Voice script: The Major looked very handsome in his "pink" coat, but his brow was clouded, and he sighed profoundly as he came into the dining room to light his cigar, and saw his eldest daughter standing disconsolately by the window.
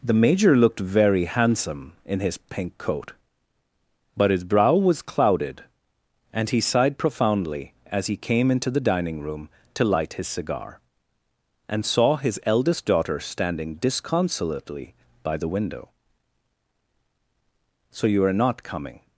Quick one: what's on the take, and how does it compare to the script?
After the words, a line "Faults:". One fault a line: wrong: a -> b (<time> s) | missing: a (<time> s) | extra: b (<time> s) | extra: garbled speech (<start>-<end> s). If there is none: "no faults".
The Major looked very handsome in his "pink" coat, but his brow was clouded, and he sighed profoundly as he came into the dining room to light his cigar, and saw his eldest daughter standing disconsolately by the window. "So you are not coming
Faults:
extra: So you are not coming (17.9 s)